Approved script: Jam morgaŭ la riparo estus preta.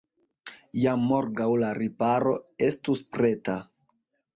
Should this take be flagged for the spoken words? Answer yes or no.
no